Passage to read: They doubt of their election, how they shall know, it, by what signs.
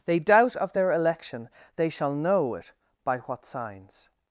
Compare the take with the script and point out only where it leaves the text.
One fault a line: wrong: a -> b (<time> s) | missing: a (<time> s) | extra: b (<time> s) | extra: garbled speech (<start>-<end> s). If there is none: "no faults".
missing: how (1.5 s)